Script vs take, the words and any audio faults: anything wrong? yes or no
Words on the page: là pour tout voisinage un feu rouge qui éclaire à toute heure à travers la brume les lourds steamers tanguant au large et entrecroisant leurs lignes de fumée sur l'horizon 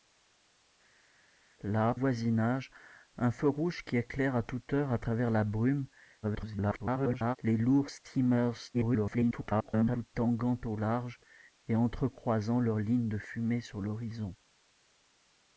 yes